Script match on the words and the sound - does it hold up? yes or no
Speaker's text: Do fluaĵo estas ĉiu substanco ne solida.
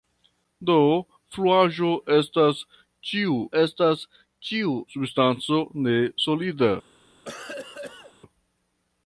no